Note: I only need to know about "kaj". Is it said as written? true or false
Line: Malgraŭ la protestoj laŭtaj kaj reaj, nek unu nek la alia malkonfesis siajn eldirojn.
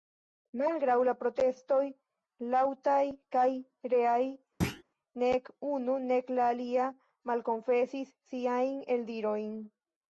true